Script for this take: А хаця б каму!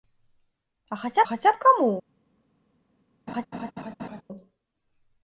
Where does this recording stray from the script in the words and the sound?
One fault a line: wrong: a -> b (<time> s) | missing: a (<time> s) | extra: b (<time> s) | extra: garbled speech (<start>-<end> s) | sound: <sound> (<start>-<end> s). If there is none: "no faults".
extra: хаця (1.3 s)
sound: laugh (3.3-4.2 s)